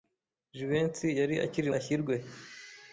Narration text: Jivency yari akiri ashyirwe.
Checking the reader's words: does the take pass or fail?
pass